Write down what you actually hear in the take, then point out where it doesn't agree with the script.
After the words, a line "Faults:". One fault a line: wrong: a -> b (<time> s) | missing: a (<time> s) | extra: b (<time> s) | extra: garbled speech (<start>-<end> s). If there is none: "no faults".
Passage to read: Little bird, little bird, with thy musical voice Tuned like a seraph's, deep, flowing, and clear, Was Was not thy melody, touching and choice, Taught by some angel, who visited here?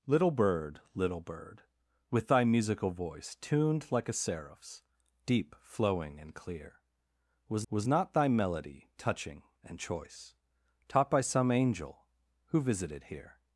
Little bird, little bird, with thy musical voice Tuned like a seraph's, deep, flowing, and clear, Was Was not thy melody, touching and choice, Taught by some angel, who visited here?
Faults:
no faults